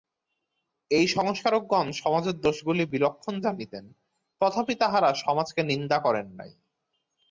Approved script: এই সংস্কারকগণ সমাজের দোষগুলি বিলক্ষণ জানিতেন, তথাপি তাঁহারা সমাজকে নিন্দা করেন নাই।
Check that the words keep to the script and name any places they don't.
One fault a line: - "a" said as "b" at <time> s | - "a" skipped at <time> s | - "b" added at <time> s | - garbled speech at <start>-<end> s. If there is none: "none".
none